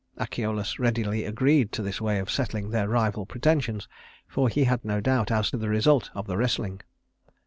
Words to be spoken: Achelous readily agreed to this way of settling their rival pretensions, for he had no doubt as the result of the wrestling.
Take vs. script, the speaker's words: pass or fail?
pass